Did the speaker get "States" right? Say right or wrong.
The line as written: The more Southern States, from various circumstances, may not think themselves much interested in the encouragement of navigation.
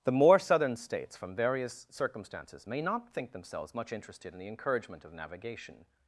right